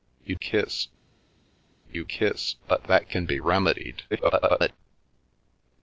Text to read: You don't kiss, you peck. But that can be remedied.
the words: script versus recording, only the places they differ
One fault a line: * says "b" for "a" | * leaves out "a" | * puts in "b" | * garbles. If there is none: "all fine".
* leaves out "don't"
* says "kiss" for "peck"
* garbles